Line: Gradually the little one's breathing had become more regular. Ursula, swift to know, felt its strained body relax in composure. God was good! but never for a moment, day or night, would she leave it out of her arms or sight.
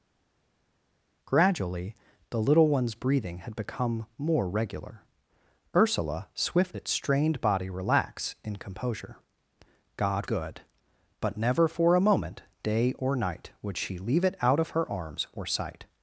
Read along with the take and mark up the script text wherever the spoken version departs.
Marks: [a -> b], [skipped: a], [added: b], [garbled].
Gradually the little one's breathing had become more regular. Ursula, swift [skipped: to know, felt] its strained body relax in composure. God [skipped: was] good! but never for a moment, day or night, would she leave it out of her arms or sight.